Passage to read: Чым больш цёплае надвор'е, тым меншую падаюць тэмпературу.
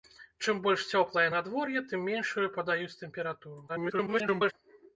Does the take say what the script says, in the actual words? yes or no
no